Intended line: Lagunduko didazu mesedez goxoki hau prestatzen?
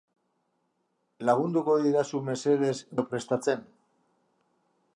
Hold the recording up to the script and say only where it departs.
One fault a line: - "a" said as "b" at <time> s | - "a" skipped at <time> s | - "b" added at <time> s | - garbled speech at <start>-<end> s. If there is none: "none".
- "goxoki" skipped at 2.7 s